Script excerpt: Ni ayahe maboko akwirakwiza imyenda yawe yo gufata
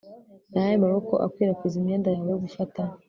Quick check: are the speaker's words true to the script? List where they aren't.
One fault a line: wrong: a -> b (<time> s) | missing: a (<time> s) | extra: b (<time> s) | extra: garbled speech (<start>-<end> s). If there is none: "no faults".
no faults